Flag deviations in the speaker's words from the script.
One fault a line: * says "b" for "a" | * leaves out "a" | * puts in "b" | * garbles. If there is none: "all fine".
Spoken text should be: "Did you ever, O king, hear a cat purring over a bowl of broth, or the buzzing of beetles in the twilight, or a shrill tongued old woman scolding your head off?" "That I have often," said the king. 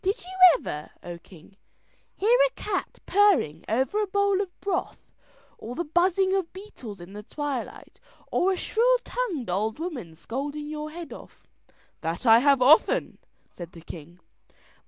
all fine